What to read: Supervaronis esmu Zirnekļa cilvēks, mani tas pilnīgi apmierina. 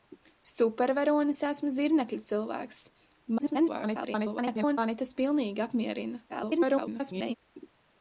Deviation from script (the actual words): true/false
true